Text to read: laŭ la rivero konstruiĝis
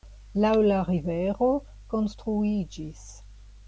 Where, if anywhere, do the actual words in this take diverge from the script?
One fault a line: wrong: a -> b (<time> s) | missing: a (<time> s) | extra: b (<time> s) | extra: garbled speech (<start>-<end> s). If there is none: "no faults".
no faults